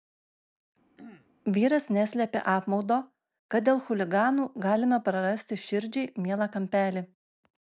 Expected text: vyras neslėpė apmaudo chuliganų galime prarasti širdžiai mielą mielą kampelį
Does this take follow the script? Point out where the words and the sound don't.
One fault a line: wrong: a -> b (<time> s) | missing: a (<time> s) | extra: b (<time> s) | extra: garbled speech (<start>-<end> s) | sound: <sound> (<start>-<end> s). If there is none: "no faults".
sound: throat clearing (1.0-1.3 s)
extra: kad dėl (3.6 s)
missing: mielą (6.5 s)